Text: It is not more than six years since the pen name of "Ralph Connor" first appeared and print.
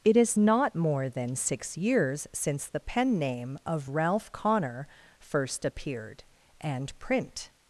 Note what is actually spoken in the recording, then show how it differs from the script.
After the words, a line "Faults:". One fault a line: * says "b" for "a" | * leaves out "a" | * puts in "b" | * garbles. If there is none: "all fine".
It is not more than six years since the pen name of "Ralph Connor" first appeared and print.
Faults:
all fine